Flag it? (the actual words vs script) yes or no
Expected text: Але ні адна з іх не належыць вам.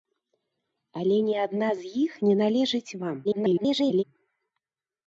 yes